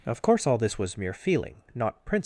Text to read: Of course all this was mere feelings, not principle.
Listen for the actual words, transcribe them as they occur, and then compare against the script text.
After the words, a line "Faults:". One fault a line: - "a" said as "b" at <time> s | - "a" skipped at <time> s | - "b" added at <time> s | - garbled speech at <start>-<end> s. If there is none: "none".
Of course all this was mere feeling, not principle.
Faults:
- "feelings" said as "feeling" at 1.1 s